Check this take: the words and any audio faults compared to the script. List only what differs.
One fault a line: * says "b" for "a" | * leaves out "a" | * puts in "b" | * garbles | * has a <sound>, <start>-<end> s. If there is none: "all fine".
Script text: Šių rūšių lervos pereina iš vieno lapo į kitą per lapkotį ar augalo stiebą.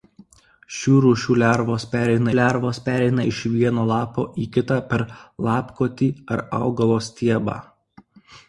* puts in "lervos pereina"